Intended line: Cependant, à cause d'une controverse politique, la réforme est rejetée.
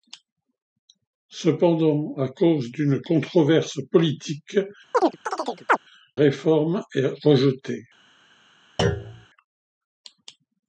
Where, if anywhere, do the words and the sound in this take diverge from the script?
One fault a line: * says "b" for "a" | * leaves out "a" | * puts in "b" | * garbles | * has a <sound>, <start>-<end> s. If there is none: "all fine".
* leaves out "la"
* has a chirp, 4.9-5.8 s
* has a thud, 8.8-9.3 s